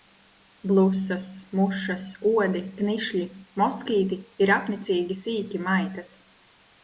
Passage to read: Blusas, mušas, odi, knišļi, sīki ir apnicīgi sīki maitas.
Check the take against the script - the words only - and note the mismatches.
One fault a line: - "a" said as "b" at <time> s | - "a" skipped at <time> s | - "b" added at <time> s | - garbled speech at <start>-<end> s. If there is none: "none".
- "sīki" said as "moskīti" at 3.6 s